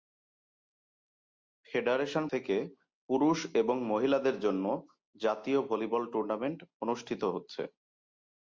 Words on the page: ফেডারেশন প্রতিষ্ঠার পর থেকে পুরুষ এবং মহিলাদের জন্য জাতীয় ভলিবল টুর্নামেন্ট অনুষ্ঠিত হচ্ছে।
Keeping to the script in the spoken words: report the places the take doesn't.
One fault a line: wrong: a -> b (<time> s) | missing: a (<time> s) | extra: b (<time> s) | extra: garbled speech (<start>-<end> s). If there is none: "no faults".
missing: প্রতিষ্ঠার পর (2.2 s)